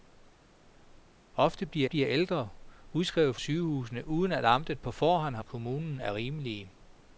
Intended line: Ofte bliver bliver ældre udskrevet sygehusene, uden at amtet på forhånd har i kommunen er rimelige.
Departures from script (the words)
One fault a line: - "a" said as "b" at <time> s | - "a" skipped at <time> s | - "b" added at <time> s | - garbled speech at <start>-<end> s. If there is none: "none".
none